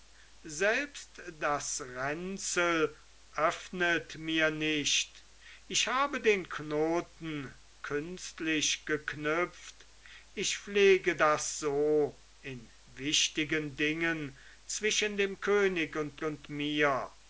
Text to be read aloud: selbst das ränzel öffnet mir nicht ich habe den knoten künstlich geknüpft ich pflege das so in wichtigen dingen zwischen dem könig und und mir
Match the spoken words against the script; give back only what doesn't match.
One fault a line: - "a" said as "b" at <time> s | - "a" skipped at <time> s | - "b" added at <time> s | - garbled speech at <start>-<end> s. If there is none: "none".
none